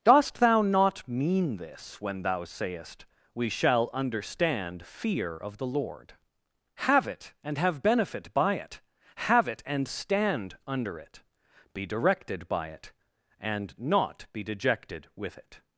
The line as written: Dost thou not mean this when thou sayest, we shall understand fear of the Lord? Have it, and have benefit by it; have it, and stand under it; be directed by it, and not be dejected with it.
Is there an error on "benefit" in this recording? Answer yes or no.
no